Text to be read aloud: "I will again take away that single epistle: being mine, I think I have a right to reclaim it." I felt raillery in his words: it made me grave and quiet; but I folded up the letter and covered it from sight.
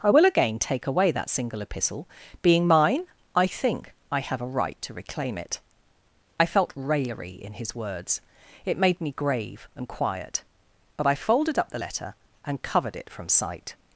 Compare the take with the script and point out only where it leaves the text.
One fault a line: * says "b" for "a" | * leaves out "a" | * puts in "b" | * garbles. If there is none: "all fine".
all fine